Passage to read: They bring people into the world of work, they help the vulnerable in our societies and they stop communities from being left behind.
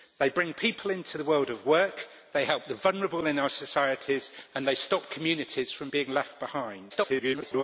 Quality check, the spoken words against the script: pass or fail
fail